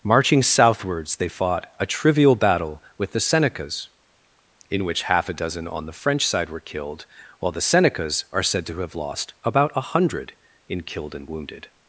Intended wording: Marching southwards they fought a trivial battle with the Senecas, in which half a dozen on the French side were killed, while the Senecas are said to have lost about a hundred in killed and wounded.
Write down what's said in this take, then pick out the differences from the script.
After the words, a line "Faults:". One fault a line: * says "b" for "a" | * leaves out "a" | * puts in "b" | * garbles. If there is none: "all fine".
Marching southwards they fought a trivial battle with the Senecas, in which half a dozen on the French side were killed, while the Senecas are said to have lost about a hundred in killed and wounded.
Faults:
all fine